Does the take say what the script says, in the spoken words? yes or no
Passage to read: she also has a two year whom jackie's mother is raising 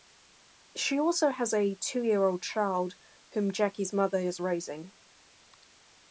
no